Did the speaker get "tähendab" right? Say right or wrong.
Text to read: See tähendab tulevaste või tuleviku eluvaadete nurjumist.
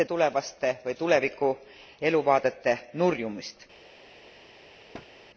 wrong